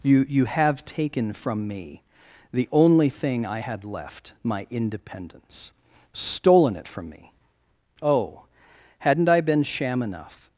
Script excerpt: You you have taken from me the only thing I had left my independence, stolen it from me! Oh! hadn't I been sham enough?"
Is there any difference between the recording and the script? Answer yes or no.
no